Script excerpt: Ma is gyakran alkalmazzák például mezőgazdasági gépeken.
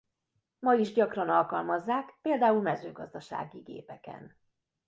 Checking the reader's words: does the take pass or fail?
pass